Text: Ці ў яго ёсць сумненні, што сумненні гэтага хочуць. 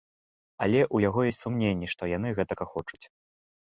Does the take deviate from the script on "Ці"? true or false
true